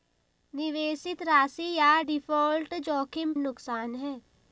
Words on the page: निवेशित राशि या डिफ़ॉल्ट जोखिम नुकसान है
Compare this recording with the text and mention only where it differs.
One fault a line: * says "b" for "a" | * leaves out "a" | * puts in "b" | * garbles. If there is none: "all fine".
all fine